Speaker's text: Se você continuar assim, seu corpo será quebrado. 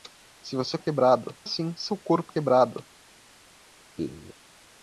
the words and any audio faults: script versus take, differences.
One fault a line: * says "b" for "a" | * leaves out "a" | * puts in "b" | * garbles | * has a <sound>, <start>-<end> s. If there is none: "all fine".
* says "quebrado" for "continuar"
* leaves out "será"
* has a laugh, 4.0-4.3 s